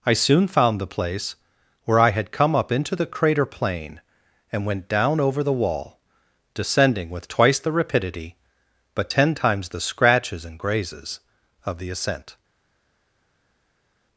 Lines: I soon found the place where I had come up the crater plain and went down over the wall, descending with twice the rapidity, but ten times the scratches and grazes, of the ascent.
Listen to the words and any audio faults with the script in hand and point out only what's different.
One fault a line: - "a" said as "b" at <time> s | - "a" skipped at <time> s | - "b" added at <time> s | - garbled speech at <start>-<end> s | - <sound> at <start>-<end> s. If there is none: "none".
- "into" added at 2.7 s